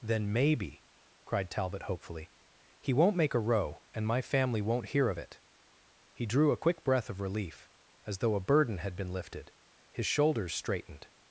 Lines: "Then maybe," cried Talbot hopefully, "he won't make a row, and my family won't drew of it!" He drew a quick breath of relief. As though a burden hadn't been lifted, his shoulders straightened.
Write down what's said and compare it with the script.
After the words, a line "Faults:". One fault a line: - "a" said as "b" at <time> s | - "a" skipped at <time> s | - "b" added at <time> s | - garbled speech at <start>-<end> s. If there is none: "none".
"Then maybe," cried Talbot hopefully, "he won't make a row, and my family won't hear of it!" He drew a quick breath of relief. As though a burden had been lifted, his shoulders straightened.
Faults:
- "drew" said as "hear" at 4.9 s
- "hadn't" said as "had" at 8.8 s